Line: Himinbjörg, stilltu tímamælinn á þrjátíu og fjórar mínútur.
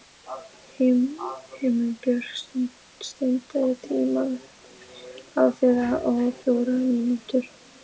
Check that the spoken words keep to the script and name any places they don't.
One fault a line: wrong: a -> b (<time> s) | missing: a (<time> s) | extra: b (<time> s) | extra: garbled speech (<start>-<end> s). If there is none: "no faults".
no faults